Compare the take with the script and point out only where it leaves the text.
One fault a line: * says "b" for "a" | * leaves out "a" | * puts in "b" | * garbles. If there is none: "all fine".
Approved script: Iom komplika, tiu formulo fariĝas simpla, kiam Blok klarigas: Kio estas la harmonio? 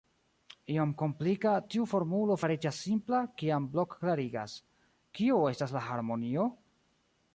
all fine